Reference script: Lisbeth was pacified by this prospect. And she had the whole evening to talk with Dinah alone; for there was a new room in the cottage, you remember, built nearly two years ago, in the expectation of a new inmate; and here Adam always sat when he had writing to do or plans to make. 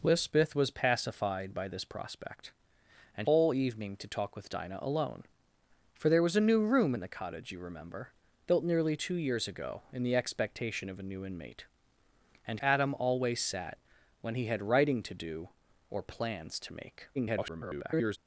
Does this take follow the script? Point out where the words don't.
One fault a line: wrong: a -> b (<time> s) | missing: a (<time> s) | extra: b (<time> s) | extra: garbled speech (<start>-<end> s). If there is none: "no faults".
missing: she had the (3.3 s)
missing: here (12.6 s)
extra: garbled speech (17.1-18.2 s)